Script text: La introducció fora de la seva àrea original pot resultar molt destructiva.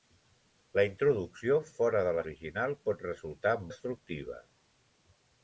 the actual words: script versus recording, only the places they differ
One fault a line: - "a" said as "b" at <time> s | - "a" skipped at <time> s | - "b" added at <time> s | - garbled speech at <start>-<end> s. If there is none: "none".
- "seva àrea" skipped at 2.2 s
- "molt" skipped at 3.6 s